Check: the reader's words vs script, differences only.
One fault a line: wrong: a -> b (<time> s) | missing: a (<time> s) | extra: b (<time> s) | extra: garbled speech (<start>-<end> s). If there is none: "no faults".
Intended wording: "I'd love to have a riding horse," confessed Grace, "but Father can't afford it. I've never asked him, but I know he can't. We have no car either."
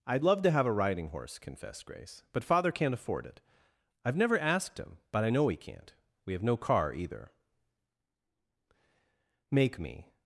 extra: Make me (9.5 s)